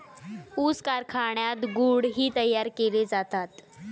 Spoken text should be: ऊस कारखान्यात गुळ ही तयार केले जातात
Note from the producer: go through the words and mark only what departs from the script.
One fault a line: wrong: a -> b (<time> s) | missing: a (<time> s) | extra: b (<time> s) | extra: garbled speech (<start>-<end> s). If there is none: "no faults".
no faults